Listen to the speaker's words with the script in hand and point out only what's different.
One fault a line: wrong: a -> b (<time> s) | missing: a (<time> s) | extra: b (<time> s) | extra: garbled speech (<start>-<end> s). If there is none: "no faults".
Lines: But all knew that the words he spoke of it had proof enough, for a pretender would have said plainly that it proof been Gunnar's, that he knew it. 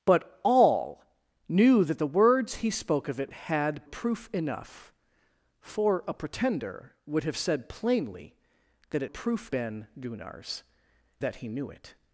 no faults